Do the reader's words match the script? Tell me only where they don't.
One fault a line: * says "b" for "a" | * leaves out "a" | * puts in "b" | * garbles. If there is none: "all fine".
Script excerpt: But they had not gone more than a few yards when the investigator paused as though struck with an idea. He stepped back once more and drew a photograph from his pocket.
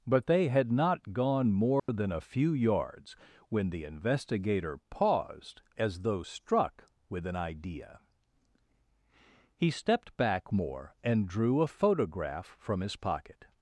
* leaves out "once"